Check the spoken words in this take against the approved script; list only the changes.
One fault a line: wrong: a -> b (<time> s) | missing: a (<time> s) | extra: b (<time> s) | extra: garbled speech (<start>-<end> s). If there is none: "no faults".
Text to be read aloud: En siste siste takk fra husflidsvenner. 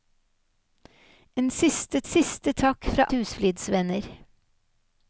no faults